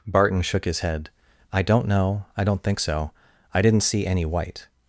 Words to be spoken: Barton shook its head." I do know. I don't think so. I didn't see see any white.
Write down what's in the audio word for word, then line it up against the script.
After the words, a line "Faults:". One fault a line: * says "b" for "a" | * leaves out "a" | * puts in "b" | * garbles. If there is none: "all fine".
Barton shook his head." I don't know. I don't think so. I didn't see any white.
Faults:
* says "his" for "its"
* says "don't" for "do"
* leaves out "see"